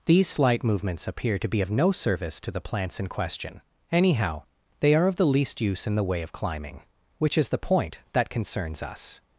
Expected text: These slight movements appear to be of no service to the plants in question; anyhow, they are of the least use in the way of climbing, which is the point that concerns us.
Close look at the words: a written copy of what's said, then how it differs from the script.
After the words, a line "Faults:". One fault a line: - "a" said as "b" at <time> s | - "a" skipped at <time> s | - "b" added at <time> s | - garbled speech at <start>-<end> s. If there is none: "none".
These slight movements appear to be of no service to the plants in question; anyhow, they are of the least use in the way of climbing, which is the point that concerns us.
Faults:
none